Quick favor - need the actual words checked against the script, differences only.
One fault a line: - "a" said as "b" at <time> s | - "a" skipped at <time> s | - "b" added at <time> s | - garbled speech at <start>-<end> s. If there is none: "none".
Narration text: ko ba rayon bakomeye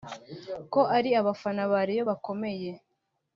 - "ari abafana" added at 1.0 s